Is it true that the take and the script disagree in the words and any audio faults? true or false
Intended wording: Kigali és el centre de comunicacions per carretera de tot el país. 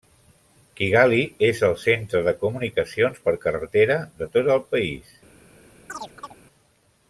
true